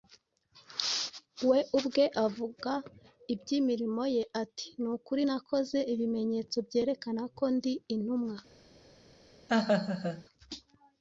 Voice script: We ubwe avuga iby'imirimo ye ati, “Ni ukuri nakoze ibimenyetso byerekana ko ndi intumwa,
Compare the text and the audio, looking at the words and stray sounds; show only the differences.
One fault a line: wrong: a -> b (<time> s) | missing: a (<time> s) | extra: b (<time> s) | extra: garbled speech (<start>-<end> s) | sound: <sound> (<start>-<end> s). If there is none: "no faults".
sound: laugh (9.5-10.2 s)